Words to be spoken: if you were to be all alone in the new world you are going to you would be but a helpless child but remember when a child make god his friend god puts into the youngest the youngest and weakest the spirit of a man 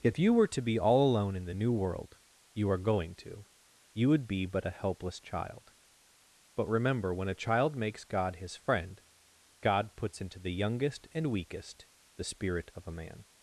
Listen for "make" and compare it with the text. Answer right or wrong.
wrong